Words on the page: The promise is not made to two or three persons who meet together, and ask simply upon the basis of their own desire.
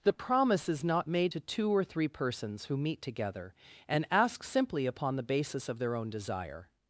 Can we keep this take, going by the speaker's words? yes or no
yes